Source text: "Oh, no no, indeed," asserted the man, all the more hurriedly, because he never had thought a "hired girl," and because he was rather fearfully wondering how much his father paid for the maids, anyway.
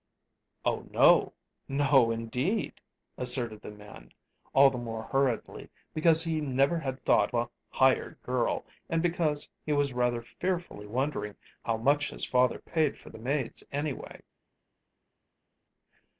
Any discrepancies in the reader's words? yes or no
no